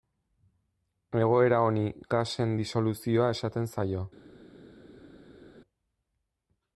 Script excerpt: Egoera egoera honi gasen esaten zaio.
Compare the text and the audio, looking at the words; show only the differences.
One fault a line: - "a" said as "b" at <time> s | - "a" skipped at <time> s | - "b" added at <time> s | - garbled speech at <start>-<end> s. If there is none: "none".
- "egoera" skipped at 1.6 s
- "disoluzioa" added at 2.6 s